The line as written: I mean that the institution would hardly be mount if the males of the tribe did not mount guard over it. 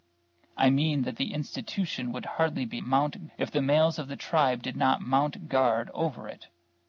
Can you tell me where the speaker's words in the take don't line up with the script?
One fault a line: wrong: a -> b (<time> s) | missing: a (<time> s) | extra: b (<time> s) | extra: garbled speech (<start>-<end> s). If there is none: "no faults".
no faults